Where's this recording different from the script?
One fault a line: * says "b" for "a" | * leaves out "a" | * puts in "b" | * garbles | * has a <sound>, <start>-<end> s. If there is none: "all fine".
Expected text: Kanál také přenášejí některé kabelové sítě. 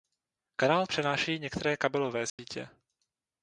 * leaves out "také"
* has a dropout, 2.3-2.4 s